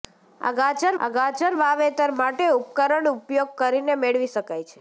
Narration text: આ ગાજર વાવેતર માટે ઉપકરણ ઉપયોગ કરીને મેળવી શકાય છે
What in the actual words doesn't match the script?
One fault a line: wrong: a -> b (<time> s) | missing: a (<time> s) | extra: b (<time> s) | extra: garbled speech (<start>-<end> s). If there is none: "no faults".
extra: આ ગાજર (1.0 s)